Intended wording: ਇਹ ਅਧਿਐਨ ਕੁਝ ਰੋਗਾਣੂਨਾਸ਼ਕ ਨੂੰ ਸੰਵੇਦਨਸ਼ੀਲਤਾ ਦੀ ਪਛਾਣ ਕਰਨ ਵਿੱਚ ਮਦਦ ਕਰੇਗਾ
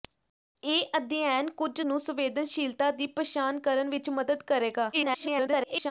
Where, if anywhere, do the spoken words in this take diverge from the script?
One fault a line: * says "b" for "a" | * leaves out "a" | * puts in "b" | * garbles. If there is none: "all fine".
* leaves out "ਰੋਗਾਣੂਨਾਸ਼ਕ"
* garbles